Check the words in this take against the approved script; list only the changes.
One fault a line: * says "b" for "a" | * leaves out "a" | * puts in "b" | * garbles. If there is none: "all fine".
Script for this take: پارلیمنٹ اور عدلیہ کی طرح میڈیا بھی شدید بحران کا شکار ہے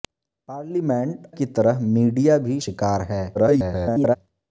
* leaves out "اور عدلیہ"
* leaves out "شدید بحران کا"
* garbles